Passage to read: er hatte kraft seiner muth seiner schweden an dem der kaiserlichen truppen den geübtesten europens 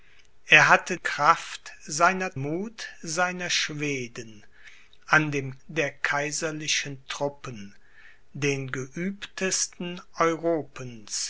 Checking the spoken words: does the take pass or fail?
pass